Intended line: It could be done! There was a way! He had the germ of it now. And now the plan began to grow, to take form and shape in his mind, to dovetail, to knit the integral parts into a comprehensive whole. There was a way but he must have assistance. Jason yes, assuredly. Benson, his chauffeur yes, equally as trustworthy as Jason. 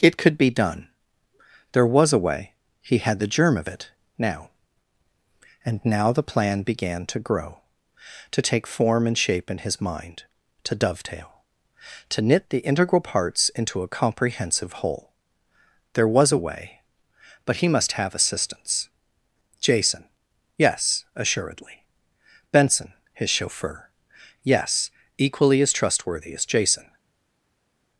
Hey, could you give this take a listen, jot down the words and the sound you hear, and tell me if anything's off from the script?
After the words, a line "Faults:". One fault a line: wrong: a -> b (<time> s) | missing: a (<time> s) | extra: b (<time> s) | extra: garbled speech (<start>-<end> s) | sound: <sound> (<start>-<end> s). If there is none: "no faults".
It could be done! There was a way! He had the germ of it now. And now the plan began to grow, to take form and shape in his mind, to dovetail, to knit the integral parts into a comprehensive whole. There was a way but he must have assistance. Jason yes, assuredly. Benson, his chauffeur yes, equally as trustworthy as Jason.
Faults:
no faults